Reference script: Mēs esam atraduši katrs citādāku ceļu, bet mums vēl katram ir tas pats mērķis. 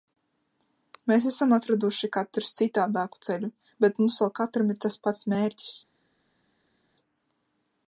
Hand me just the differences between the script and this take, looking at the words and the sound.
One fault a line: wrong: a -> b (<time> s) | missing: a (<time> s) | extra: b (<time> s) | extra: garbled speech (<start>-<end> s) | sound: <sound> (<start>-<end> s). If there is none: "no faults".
no faults